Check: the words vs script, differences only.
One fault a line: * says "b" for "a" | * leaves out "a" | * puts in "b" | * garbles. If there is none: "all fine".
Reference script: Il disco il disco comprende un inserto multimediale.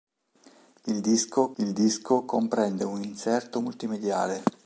all fine